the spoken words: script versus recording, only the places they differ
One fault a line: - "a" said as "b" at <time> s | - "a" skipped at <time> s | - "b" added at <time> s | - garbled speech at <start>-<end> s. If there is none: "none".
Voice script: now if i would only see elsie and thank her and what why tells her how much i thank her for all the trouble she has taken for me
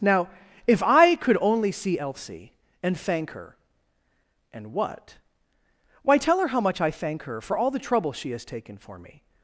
- "would" said as "could" at 1.1 s
- "tells" said as "tell" at 6.2 s